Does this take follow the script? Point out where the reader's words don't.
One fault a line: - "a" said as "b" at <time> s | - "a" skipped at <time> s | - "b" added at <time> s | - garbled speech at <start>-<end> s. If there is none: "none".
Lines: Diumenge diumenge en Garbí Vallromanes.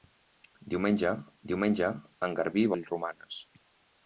none